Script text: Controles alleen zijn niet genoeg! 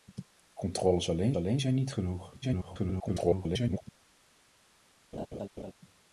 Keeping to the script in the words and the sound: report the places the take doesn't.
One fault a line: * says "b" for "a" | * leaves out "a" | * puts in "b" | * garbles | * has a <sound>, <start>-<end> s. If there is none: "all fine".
* puts in "alleen"
* garbles
* has a laugh, 5.1-5.7 s